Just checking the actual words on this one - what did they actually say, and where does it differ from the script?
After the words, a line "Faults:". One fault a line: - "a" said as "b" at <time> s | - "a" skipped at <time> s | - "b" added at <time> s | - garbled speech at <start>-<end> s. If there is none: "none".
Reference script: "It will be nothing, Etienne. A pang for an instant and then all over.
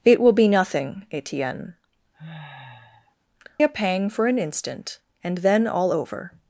"It will be nothing, Etienne. A pang for an instant and then all over.
Faults:
none